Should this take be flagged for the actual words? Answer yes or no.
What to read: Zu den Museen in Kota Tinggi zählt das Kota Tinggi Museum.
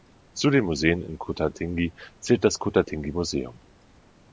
no